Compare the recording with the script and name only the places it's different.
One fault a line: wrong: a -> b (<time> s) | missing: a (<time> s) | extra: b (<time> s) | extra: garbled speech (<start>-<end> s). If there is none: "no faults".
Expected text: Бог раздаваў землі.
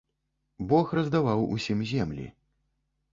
extra: усім (1.6 s)